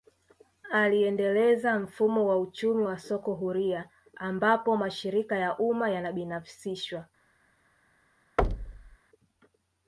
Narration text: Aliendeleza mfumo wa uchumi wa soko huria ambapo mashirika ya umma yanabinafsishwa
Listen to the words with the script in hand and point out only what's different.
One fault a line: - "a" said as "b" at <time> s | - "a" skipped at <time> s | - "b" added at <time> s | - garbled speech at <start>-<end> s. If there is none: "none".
none